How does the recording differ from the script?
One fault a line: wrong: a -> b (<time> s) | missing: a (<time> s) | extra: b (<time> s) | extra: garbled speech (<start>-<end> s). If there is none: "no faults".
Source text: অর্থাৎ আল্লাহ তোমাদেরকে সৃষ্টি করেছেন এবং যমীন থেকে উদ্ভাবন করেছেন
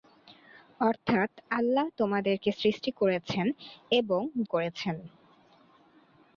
missing: যমীন থেকে উদ্ভাবন (4.2 s)